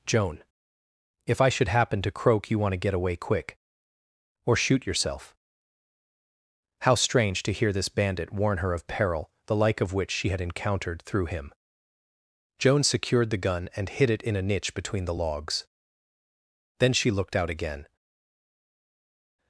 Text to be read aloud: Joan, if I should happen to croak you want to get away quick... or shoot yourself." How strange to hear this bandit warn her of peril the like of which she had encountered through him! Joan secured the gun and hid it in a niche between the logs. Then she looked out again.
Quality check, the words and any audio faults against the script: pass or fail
pass